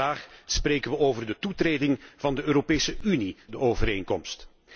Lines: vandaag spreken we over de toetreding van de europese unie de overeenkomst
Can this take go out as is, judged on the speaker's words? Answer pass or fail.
pass